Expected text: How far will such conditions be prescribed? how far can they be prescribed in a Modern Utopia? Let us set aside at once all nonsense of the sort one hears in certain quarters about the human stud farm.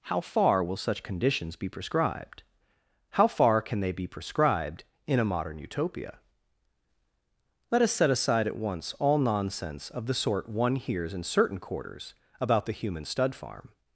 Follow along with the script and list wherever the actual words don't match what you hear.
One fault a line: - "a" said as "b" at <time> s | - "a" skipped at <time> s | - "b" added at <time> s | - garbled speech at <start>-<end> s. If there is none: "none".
none